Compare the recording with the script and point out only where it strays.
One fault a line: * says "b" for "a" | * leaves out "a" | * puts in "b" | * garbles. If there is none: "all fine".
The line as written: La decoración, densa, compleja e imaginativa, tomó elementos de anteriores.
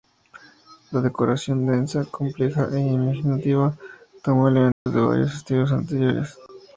* puts in "varios estilos"